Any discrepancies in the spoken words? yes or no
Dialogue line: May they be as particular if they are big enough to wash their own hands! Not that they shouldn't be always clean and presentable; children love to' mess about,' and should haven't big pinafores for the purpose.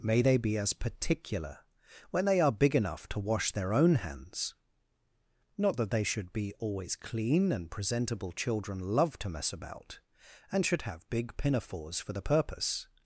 yes